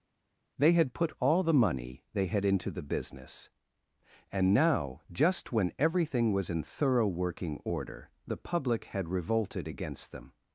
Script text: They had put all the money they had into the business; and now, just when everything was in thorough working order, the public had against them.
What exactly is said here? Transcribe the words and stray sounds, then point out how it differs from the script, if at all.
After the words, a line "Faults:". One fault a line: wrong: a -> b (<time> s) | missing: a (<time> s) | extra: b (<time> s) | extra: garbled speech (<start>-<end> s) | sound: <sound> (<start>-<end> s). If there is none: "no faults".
They had put all the money they had into the business; and now, just when everything was in thorough working order, the public had revolted against them.
Faults:
extra: revolted (9.1 s)